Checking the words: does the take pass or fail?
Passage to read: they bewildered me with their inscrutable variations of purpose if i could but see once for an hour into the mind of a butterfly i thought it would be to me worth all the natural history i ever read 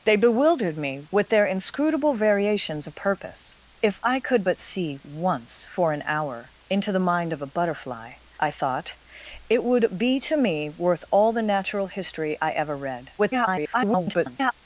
fail